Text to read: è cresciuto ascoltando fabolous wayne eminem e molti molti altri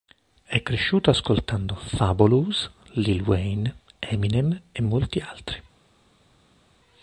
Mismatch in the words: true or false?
true